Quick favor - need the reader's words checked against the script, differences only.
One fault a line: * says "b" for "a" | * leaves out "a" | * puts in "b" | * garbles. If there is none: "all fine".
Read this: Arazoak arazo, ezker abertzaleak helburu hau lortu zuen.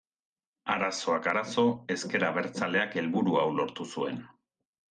all fine